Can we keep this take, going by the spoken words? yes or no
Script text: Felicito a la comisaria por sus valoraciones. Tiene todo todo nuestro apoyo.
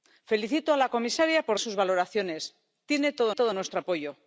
yes